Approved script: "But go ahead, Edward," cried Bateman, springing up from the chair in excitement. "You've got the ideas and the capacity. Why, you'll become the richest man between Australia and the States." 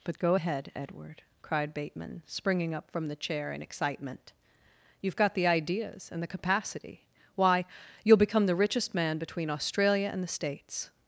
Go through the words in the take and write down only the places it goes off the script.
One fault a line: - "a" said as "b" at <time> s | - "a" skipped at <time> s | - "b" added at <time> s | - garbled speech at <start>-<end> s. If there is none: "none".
none